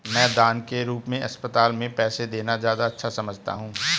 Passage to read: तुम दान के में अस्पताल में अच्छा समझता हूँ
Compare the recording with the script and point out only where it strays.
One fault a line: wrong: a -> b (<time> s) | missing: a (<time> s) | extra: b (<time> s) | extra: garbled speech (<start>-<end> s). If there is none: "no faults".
wrong: तुम -> मैं (0.1 s)
extra: रूप (0.8 s)
extra: पैसे देना ज्यादा (1.9 s)